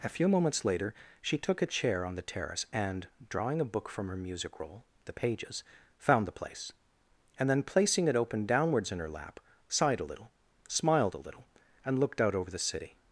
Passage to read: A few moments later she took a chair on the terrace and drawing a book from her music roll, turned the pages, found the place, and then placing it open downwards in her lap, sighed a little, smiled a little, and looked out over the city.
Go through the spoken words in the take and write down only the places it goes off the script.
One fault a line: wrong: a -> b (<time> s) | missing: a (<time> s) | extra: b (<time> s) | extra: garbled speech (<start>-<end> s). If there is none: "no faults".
missing: turned (4.8 s)